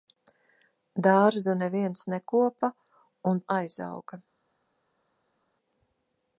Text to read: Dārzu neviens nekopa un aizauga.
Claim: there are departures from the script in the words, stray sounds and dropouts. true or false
false